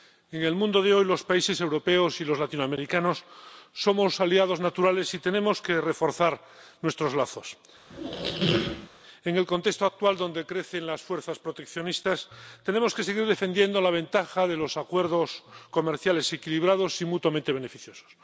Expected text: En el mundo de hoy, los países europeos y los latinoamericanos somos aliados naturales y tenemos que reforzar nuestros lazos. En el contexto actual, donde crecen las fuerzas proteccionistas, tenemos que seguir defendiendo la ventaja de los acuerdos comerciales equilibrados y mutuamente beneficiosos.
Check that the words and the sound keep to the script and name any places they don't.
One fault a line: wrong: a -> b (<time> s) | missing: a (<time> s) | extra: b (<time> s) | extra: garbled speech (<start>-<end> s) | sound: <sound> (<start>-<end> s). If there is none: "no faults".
sound: squeak (7.9-8.9 s)